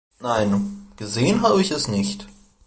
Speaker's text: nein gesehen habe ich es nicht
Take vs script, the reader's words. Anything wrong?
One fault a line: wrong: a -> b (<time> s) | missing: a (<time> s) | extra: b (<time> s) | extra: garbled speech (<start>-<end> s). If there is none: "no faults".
no faults